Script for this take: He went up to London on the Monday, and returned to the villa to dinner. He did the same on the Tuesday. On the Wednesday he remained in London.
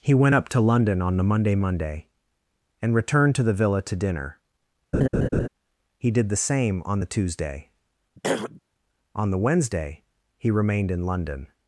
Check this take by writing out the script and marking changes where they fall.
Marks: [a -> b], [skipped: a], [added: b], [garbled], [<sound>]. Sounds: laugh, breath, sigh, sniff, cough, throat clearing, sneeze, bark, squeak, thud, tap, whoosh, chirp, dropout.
He went up to London on the Monday, [added: Monday] and returned to the villa to dinner. [laugh] He did the same on the Tuesday. [throat clearing] On the Wednesday he remained in London.